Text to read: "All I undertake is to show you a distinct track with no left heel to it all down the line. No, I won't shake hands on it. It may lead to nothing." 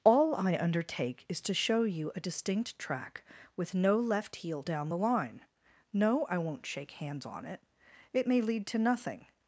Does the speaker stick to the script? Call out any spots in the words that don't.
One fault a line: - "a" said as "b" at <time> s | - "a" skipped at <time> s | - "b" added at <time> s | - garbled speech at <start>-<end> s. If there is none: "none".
- "to it all" skipped at 4.6 s